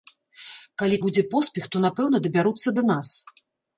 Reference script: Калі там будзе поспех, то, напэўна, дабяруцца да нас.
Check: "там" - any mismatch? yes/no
yes